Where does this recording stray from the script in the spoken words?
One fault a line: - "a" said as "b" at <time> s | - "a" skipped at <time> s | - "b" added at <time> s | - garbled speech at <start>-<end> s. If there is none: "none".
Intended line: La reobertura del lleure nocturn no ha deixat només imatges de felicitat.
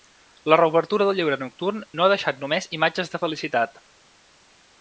none